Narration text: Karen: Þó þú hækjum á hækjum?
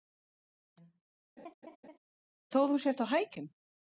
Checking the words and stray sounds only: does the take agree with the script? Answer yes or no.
no